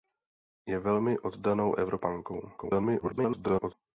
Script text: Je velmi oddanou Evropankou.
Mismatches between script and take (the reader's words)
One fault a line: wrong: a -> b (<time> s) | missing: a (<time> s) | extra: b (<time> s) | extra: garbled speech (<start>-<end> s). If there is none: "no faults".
extra: garbled speech (2.6-3.7 s)